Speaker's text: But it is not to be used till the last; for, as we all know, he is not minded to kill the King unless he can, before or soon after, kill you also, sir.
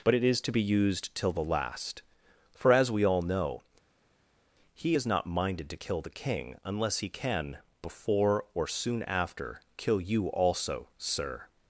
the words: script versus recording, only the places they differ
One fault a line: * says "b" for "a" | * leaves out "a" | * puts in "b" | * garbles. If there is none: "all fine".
* leaves out "not"